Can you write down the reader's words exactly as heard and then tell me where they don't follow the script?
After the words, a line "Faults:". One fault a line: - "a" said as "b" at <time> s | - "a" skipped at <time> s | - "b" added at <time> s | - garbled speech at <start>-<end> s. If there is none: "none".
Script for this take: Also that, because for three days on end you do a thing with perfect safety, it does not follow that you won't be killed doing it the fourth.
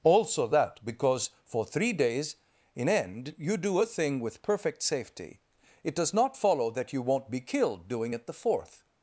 Also that, because for three days in end you do a thing with perfect safety, it does not follow that you won't be killed doing it the fourth.
Faults:
- "on" said as "in" at 2.8 s